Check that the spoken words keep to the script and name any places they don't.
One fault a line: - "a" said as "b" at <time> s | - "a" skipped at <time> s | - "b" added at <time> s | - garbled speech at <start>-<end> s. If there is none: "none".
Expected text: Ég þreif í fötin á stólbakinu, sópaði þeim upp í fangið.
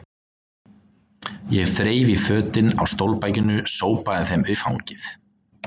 - "upp" skipped at 4.5 s